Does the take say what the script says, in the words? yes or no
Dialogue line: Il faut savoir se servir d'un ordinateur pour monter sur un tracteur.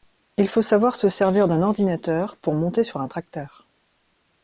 yes